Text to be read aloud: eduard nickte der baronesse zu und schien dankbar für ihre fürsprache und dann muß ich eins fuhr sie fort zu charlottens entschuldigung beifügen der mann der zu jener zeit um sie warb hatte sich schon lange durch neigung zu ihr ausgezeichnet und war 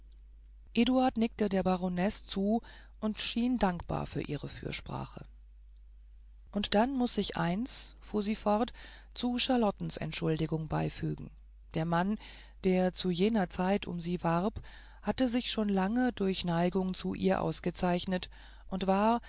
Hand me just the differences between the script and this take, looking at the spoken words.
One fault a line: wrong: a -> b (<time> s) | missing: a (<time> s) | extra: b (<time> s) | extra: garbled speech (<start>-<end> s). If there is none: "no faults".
no faults